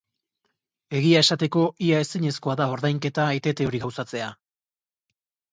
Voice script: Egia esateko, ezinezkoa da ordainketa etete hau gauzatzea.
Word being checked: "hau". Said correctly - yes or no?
no